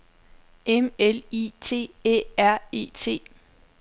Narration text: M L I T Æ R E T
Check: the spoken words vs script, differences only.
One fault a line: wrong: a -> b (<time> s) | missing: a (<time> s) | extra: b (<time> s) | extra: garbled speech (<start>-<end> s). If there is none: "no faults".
no faults